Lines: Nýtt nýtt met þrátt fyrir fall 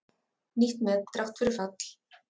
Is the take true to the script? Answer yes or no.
no